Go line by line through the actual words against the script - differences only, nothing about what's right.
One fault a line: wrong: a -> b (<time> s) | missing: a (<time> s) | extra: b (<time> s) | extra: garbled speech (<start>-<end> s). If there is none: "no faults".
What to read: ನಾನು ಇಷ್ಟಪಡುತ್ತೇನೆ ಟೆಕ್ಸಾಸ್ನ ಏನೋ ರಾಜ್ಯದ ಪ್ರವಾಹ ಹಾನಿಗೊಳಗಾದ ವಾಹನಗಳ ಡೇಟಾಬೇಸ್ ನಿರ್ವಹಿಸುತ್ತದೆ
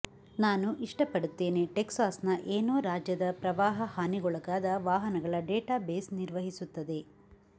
no faults